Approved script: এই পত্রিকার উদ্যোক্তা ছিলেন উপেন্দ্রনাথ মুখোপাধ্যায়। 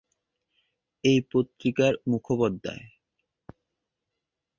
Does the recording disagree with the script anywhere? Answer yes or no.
yes